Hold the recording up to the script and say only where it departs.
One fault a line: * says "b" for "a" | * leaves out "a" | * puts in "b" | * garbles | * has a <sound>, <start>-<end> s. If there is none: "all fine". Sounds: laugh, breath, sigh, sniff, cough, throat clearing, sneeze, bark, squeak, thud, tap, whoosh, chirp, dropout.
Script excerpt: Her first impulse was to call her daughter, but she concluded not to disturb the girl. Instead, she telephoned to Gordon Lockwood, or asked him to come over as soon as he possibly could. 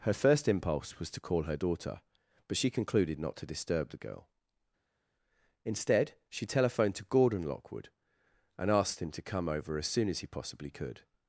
* says "and" for "or"